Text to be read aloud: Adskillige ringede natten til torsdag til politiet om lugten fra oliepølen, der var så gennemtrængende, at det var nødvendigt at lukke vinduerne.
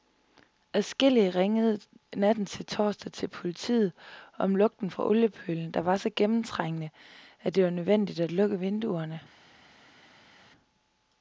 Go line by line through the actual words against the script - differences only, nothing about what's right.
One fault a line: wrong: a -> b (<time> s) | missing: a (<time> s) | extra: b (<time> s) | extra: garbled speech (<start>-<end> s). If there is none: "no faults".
no faults